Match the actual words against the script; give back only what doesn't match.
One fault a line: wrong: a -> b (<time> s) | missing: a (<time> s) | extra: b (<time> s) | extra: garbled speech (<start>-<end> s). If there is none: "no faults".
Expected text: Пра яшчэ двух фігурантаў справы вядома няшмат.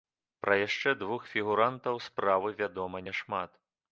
no faults